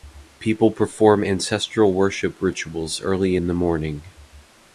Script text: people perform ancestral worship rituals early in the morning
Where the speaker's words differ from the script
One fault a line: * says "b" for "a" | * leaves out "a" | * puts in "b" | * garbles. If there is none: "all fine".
all fine